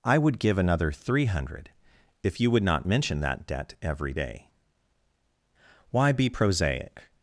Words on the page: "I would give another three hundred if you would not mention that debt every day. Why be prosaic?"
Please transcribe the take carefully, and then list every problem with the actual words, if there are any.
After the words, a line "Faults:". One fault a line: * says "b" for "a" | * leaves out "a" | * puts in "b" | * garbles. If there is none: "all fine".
"I would give another three hundred if you would not mention that debt every day. Why be prosaic?"
Faults:
all fine